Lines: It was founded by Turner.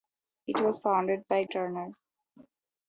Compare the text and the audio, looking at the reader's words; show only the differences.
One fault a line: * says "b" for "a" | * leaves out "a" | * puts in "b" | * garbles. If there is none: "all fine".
all fine